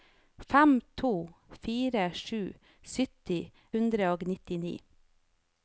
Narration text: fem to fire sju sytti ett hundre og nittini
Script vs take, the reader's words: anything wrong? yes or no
yes